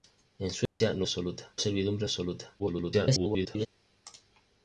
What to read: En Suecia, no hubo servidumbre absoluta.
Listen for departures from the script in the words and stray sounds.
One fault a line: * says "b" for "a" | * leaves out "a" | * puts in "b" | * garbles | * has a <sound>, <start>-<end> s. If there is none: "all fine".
* has a dropout, 0.7-0.8 s
* says "absoluta" for "hubo"
* garbles